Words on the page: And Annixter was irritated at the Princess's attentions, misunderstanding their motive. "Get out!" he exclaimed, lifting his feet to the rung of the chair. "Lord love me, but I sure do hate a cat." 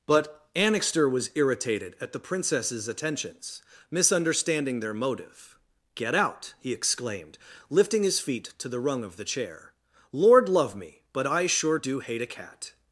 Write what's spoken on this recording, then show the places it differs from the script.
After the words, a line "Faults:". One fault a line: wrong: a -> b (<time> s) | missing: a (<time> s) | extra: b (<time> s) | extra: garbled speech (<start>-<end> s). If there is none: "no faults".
But Annixter was irritated at the Princess's attentions, misunderstanding their motive. "Get out!" he exclaimed, lifting his feet to the rung of the chair. "Lord love me, but I sure do hate a cat."
Faults:
wrong: And -> But (0.1 s)